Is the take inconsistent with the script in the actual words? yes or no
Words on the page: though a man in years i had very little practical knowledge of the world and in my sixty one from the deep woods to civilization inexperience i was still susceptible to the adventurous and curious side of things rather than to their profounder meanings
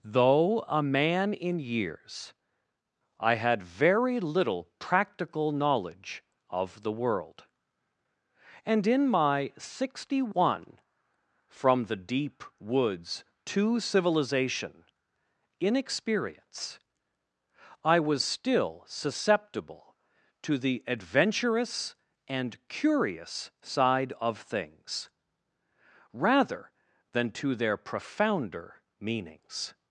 no